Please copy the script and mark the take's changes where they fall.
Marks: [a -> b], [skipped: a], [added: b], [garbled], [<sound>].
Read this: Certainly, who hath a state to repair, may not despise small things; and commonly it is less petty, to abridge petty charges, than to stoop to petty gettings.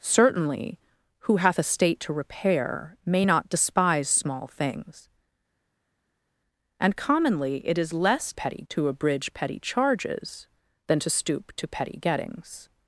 Certainly, who hath a state to repair, may not despise small things; and commonly it is less petty, to abridge petty charges, than to stoop to petty gettings.